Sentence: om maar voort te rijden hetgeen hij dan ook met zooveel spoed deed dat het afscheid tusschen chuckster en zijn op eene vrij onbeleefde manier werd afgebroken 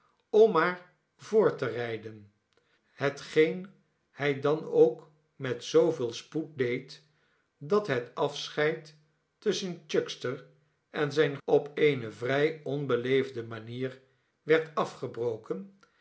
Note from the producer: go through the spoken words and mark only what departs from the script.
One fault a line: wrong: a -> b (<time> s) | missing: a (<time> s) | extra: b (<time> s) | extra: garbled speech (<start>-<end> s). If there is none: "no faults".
no faults